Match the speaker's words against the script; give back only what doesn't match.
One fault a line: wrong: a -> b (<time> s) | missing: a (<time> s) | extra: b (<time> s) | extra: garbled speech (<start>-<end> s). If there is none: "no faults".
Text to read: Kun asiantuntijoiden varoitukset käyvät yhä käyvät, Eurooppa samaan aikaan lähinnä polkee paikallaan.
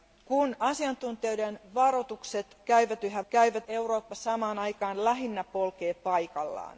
no faults